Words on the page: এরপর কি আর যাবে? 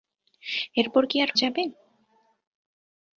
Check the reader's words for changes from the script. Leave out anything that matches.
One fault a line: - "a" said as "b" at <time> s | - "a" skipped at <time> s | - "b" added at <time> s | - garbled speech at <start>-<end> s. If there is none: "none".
none